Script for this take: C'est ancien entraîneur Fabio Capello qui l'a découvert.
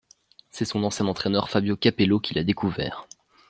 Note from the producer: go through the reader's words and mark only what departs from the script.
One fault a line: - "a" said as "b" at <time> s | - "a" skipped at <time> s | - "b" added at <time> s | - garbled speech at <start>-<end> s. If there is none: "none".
- "son" added at 0.7 s